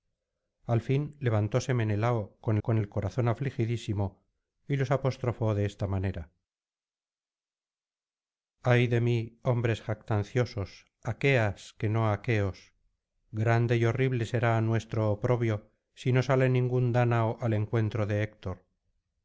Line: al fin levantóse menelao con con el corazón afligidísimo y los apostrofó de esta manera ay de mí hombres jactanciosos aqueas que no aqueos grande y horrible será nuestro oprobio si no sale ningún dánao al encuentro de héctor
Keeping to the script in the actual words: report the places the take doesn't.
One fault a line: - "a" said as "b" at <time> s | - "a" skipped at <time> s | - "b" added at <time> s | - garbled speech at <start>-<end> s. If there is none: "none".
none